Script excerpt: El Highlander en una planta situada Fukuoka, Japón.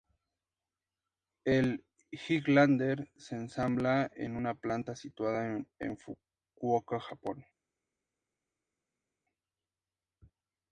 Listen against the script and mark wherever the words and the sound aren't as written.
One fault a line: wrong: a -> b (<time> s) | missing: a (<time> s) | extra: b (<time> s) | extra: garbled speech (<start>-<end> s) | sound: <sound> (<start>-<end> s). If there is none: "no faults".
extra: se ensambla (3.2 s)
extra: en (5.8 s)